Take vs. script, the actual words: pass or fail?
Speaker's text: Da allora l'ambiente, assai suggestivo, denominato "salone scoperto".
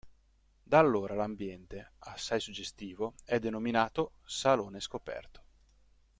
fail